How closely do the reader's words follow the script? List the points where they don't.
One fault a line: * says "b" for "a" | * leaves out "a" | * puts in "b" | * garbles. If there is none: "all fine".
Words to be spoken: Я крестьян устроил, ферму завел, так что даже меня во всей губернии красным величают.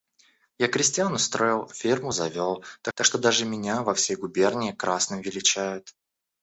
* puts in "так"